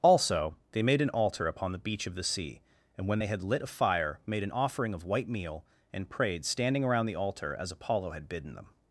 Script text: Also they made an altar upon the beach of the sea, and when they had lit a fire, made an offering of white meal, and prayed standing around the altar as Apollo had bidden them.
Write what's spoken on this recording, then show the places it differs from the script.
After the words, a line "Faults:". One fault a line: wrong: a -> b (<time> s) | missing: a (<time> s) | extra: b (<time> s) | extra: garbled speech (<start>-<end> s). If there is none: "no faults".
Also they made an altar upon the beach of the sea, and when they had lit a fire, made an offering of white meal, and prayed standing around the altar as Apollo had bidden them.
Faults:
no faults